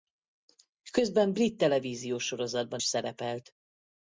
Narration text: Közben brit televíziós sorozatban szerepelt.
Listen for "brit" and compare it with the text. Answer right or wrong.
right